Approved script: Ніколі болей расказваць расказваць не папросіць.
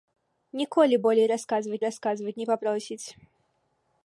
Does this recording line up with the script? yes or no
yes